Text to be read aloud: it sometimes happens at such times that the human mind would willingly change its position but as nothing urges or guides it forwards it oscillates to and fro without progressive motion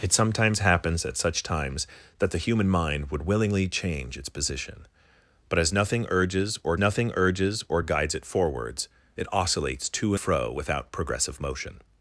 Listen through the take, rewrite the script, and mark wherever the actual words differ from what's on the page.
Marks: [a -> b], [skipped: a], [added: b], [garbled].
it sometimes happens at such times that the human mind would willingly change its position but as nothing urges or [added: nothing urges or] guides it forwards it oscillates to [skipped: and] fro without progressive motion